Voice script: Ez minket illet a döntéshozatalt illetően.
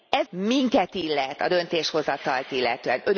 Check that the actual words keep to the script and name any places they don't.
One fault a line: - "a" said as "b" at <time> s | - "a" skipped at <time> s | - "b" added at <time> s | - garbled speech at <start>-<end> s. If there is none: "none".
none